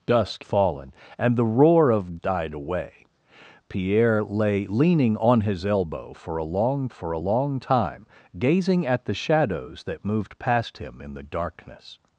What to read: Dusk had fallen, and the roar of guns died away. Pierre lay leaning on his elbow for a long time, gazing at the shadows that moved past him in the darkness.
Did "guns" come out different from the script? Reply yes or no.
yes